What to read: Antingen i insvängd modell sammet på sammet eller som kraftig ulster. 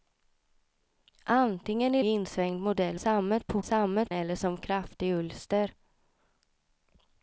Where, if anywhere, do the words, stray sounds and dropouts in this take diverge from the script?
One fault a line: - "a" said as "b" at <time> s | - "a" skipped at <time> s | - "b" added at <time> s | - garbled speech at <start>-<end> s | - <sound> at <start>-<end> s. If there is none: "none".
none